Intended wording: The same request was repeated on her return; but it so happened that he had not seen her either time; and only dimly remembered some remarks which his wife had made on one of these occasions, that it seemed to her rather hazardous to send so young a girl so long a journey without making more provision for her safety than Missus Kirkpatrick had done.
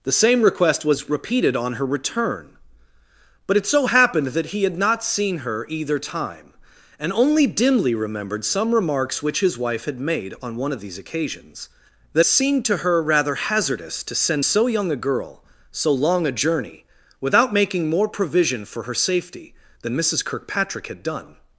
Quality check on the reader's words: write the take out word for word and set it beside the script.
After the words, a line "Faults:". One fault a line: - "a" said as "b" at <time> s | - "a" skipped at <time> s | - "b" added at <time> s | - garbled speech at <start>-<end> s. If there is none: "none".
The same request was repeated on her return; but it so happened that he had not seen her either time; and only dimly remembered some remarks which his wife had made on one of these occasions, that seemed to her rather hazardous to send so young a girl so long a journey without making more provision for her safety than Missus Kirkpatrick had done.
Faults:
- "it" skipped at 12.2 s